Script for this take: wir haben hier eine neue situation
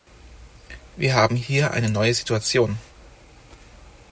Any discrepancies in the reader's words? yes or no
no